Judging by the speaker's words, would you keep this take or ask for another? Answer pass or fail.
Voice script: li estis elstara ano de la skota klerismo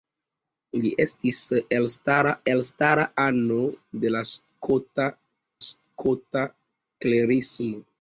fail